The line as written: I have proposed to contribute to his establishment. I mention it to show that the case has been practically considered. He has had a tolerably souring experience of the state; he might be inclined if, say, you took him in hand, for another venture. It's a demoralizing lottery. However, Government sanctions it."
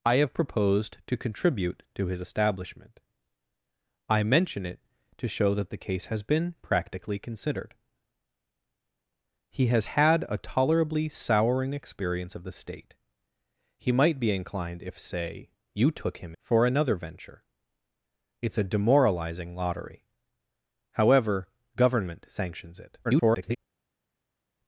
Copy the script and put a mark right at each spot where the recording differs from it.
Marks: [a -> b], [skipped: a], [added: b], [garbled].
I have proposed to contribute to his establishment. I mention it to show that the case has been practically considered. He has had a tolerably souring experience of the state; he might be inclined if, say, you took him [skipped: in hand,] for another venture. It's a demoralizing lottery. However, Government sanctions it." [garbled]